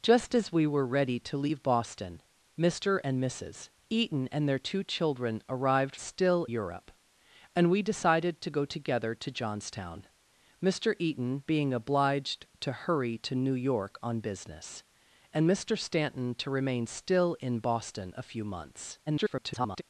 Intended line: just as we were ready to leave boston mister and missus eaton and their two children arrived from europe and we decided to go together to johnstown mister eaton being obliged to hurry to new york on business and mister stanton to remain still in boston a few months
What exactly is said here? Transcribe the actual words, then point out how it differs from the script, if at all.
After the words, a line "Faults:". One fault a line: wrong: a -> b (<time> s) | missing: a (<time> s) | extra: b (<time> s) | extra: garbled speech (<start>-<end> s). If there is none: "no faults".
just as we were ready to leave boston mister and missus eaton and their two children arrived still europe and we decided to go together to johnstown mister eaton being obliged to hurry to new york on business and mister stanton to remain still in boston a few months [garbled]
Faults:
wrong: from -> still (6.0 s)
extra: garbled speech (19.1-19.8 s)